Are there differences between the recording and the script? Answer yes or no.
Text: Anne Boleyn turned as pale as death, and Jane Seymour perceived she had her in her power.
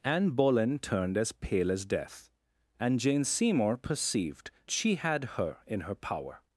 no